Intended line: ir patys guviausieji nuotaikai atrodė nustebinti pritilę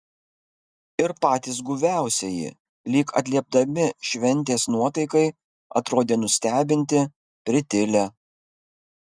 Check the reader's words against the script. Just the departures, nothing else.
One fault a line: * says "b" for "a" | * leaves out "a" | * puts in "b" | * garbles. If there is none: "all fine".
* puts in "lyg atliepdami šventės"